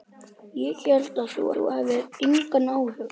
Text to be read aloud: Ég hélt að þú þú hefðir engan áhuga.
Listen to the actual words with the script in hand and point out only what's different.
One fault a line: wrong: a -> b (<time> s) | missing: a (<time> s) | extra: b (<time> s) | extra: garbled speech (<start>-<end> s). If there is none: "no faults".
no faults